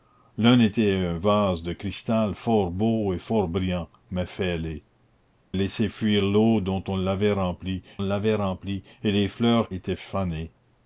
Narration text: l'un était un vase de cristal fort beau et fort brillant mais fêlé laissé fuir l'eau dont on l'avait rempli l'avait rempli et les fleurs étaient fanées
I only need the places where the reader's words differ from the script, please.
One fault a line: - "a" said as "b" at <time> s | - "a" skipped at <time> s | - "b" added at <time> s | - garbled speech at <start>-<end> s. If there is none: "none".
none